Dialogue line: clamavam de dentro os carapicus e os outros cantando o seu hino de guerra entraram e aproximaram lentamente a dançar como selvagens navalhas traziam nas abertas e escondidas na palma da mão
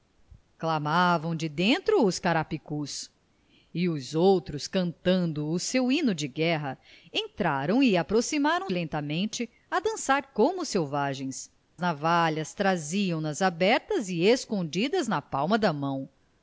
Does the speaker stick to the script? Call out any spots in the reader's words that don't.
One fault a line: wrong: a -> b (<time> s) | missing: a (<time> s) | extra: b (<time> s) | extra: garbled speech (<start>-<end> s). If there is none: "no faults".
no faults